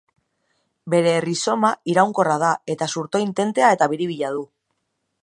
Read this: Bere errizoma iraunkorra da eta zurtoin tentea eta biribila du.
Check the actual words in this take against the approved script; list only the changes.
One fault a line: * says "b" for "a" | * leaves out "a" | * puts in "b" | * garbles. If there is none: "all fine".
all fine